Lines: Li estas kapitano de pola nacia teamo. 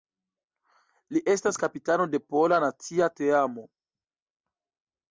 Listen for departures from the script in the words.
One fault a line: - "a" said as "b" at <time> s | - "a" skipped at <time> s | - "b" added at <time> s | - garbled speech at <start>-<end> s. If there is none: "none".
none